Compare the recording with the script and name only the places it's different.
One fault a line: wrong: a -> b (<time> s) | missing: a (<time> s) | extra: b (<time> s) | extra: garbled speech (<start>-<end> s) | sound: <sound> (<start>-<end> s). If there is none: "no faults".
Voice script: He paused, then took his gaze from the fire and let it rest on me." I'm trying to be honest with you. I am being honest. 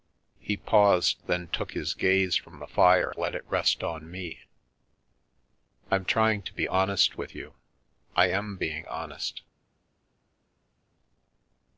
missing: and (3.1 s)